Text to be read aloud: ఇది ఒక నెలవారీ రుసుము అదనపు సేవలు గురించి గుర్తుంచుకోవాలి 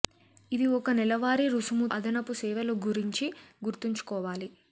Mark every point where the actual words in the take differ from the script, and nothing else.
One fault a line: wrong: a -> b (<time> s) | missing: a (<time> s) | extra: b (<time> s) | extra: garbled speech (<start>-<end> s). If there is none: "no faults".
no faults